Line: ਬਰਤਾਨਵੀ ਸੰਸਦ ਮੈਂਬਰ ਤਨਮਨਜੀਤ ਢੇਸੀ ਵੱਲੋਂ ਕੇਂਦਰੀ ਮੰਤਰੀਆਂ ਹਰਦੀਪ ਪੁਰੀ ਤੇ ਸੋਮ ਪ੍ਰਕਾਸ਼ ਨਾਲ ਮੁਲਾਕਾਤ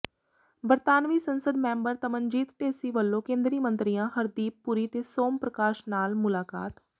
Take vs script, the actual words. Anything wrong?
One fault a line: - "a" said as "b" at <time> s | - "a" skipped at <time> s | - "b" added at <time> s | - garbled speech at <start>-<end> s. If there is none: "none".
none